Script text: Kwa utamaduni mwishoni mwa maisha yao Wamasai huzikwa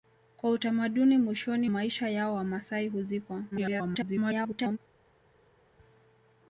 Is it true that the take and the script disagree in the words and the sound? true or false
true